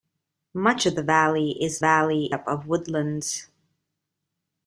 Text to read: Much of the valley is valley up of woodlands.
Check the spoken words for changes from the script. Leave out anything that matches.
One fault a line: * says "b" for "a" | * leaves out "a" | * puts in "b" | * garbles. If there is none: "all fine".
all fine